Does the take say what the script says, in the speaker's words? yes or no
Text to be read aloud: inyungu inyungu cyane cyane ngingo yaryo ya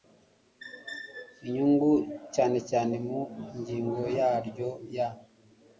no